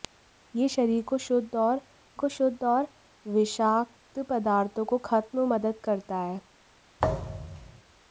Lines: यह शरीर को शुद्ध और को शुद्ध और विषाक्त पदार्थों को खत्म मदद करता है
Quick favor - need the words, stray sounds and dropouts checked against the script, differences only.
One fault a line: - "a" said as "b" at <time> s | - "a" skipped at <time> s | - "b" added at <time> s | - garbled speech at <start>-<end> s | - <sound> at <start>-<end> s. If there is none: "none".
- thud at 7.0-7.8 s